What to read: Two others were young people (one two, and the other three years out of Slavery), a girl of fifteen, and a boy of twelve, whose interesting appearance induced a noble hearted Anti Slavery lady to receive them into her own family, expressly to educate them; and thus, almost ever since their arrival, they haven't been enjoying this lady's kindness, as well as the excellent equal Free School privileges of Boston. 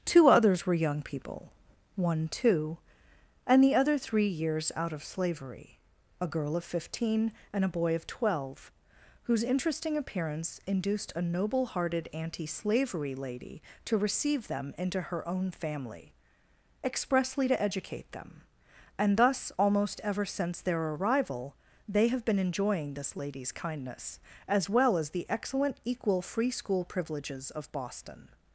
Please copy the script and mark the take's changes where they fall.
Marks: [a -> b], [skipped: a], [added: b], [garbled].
Two others were young people (one two, and the other three years out of Slavery), a girl of fifteen, and a boy of twelve, whose interesting appearance induced a noble hearted Anti Slavery lady to receive them into her own family, expressly to educate them; and thus, almost ever since their arrival, they [haven't -> have] been enjoying this lady's kindness, as well as the excellent equal Free School privileges of Boston.